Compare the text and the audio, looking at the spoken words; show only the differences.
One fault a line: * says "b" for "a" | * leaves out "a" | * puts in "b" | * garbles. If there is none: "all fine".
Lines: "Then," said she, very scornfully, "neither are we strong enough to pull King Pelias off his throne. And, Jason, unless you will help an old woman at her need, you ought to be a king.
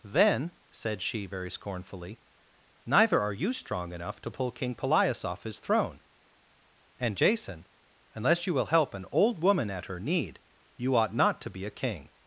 * says "you" for "we"
* puts in "not"